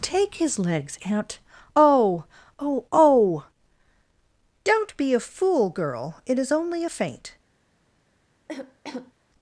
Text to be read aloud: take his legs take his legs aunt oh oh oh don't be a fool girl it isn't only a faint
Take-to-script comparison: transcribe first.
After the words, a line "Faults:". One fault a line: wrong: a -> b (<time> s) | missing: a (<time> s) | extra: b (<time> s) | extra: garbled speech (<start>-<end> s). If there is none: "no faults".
take his legs aunt oh oh oh don't be a fool girl it is only a faint
Faults:
missing: take his legs (1.0 s)
wrong: isn't -> is (6.4 s)